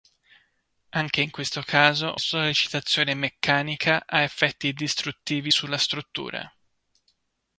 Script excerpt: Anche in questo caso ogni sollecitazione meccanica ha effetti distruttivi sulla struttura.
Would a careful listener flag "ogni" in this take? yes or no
yes